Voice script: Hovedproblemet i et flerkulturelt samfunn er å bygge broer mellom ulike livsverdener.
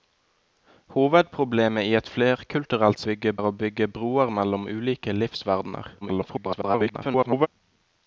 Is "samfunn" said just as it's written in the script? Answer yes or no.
no